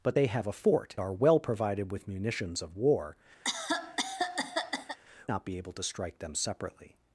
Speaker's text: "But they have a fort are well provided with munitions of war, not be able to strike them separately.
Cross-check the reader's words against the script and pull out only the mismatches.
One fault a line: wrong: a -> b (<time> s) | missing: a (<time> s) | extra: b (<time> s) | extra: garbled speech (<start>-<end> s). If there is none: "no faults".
no faults